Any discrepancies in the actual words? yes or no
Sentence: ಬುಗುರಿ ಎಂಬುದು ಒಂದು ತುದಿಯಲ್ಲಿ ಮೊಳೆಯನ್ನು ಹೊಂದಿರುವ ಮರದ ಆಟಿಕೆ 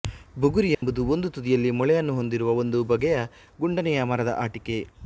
yes